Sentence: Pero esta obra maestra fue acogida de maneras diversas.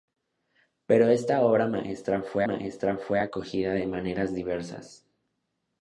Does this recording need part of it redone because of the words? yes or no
yes